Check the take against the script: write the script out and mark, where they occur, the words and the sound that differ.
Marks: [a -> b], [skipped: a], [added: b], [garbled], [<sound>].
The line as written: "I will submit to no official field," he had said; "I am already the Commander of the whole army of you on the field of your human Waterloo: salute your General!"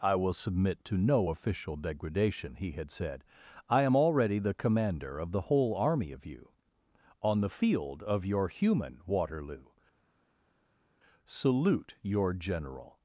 "I will submit to no official [field," -> degradation] he had said; "I am already the Commander of the whole army of you on the field of your human Waterloo: salute your General!"